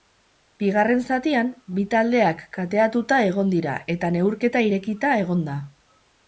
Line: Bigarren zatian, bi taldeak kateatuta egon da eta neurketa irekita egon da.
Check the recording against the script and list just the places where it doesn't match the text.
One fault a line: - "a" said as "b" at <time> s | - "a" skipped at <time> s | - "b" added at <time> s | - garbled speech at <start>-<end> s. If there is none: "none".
- "da" said as "dira" at 3.6 s